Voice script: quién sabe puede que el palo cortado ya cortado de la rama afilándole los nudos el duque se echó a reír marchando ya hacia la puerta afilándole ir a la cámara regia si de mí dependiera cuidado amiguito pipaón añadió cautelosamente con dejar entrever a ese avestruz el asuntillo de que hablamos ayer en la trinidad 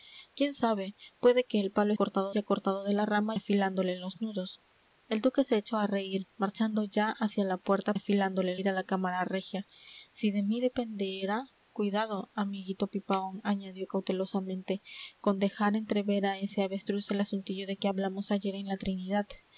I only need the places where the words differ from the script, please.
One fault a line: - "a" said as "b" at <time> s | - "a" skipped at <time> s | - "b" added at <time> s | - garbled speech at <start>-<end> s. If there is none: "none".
none